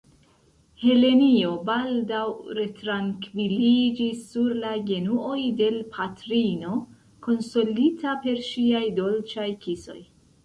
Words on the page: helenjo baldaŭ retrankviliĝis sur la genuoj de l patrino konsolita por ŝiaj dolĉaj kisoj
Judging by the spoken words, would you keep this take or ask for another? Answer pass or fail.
fail